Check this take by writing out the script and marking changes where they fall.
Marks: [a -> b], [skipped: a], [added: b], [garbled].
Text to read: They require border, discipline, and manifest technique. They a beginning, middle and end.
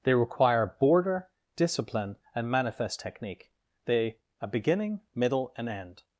They require border, discipline, and manifest technique. They a beginning, middle and end.